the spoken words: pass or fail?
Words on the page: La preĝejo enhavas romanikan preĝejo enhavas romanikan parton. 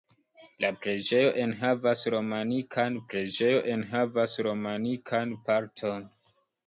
pass